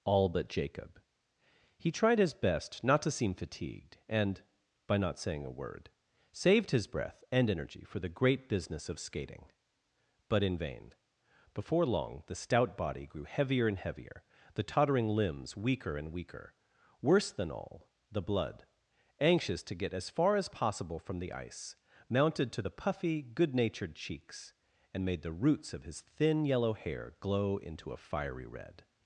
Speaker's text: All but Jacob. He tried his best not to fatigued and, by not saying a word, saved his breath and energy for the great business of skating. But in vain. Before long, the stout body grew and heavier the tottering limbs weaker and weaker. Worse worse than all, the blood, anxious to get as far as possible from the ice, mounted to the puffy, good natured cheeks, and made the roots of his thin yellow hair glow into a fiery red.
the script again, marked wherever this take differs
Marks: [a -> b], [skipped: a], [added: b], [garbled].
All but Jacob. He tried his best not to [added: seem] fatigued and, by not saying a word, saved his breath and energy for the great business of skating. But in vain. Before long, the stout body grew [added: heavier] and heavier the tottering limbs weaker and weaker. Worse [skipped: worse] than all, the blood, anxious to get as far as possible from the ice, mounted to the puffy, good natured cheeks, and made the roots of his thin yellow hair glow into a fiery red.